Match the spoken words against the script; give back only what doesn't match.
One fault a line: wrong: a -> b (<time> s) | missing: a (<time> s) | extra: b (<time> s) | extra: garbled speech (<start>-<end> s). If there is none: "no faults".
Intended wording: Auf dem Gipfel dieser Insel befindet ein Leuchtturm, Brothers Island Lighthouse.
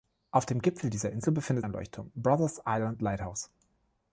no faults